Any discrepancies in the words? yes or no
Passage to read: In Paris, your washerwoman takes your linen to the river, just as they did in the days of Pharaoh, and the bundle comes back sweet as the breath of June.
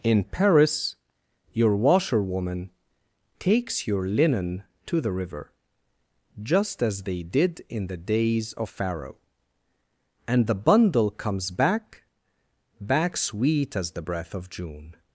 yes